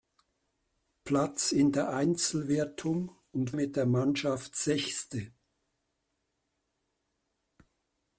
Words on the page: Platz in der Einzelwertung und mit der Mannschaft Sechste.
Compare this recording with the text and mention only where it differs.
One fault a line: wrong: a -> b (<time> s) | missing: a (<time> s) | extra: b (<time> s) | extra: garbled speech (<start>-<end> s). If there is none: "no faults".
no faults